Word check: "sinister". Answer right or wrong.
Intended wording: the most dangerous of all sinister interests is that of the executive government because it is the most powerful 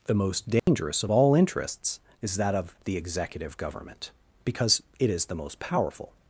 wrong